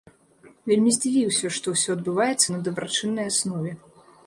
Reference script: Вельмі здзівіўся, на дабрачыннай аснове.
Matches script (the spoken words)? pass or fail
fail